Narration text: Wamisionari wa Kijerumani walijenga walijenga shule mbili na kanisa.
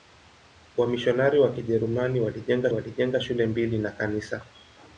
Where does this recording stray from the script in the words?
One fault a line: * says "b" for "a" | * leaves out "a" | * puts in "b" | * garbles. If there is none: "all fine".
all fine